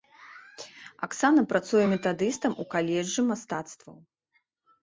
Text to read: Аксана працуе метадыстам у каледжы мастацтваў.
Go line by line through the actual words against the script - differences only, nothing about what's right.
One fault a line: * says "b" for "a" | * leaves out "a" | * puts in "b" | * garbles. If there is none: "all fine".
all fine